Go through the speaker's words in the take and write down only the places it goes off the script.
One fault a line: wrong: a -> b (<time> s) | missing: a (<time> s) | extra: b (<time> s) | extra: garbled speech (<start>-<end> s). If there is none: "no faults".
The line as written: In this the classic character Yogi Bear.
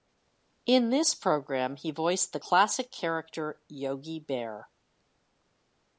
extra: program he voiced (1.1 s)